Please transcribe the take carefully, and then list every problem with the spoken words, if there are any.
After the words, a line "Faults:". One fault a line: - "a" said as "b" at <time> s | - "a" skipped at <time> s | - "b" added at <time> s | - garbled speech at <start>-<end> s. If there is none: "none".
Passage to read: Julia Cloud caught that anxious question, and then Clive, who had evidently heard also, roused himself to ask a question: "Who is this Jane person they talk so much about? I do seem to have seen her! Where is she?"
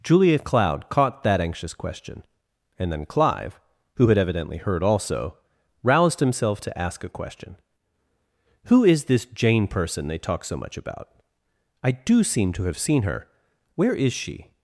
Julia Cloud caught that anxious question, and then Clive, who had evidently heard also, roused himself to ask a question: "Who is this Jane person they talk so much about? I do seem to have seen her! Where is she?"
Faults:
none